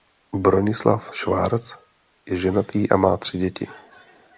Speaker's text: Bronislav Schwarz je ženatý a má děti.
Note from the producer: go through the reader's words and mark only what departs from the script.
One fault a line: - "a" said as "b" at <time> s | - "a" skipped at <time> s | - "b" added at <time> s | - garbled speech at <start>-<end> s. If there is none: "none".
- "tři" added at 3.2 s